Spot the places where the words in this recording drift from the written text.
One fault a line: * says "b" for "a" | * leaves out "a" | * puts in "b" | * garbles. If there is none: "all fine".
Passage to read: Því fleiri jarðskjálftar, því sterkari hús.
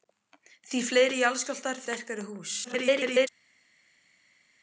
* leaves out "því"
* garbles